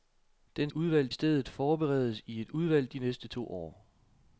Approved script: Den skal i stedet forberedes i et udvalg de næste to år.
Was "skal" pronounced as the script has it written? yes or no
no